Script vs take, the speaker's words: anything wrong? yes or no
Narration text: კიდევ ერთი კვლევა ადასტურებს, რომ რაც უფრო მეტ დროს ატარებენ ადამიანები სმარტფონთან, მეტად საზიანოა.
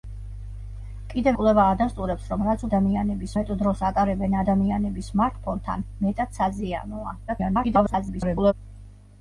yes